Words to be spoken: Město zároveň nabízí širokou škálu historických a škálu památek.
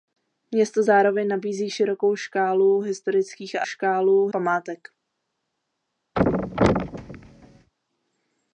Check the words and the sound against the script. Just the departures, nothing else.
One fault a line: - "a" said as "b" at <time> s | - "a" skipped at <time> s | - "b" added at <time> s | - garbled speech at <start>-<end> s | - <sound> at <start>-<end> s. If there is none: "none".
- thud at 6.2-7.7 s